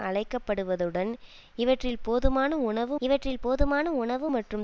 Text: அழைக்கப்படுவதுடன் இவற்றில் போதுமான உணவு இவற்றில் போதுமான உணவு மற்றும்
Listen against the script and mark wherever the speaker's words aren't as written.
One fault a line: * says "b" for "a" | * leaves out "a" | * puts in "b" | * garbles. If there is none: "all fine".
all fine